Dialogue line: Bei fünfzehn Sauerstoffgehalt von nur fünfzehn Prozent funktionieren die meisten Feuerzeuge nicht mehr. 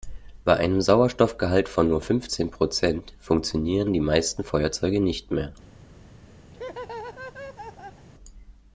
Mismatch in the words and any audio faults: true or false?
true